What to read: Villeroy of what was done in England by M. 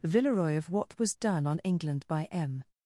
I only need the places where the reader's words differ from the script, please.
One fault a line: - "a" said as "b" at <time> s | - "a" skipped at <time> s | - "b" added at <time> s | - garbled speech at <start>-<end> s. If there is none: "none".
- "in" said as "on" at 1.4 s